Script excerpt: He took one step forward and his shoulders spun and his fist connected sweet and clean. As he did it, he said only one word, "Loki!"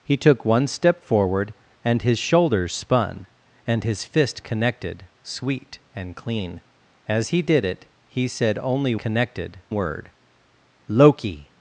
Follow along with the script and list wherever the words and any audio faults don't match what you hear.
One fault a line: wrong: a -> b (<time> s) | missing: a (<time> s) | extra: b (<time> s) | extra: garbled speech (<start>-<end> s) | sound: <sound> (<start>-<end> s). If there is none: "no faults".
wrong: one -> connected (9.0 s)